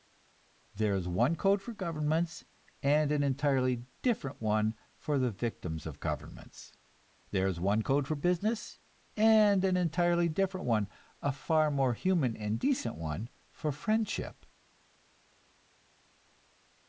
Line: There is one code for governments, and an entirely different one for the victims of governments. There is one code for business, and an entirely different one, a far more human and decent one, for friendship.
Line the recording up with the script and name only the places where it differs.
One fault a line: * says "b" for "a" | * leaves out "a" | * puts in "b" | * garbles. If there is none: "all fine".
all fine